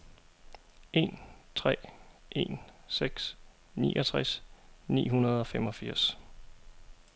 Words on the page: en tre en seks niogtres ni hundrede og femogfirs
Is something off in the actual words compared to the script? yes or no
no